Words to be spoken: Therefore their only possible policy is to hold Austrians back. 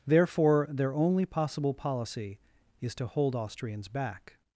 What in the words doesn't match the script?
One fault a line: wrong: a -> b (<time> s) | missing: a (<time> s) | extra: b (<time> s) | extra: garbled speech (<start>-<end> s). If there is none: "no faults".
no faults